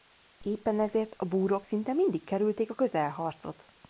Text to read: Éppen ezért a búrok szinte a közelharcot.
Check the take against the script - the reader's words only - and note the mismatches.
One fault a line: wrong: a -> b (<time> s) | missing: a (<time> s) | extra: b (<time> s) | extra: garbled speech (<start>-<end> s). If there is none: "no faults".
extra: mindig kerülték (1.9 s)